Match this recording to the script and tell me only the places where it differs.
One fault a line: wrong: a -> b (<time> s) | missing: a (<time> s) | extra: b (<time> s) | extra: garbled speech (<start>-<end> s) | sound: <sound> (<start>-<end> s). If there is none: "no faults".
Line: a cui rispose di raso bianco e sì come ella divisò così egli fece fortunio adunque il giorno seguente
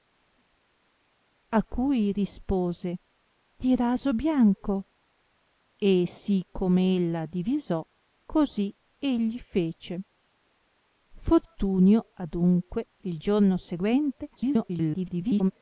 extra: garbled speech (14.4-15.5 s)